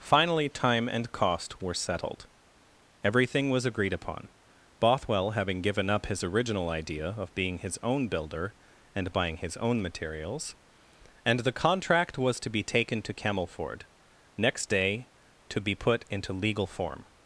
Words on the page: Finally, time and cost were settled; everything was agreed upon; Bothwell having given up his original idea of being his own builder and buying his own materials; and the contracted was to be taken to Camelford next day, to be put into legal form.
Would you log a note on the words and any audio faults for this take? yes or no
yes